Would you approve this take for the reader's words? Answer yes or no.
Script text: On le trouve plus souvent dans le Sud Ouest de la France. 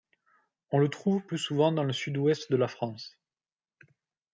yes